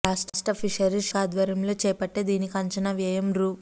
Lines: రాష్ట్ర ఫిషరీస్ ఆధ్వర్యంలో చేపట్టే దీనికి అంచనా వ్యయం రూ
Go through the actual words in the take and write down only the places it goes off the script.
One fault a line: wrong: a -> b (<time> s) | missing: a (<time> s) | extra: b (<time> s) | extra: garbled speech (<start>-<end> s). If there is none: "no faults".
no faults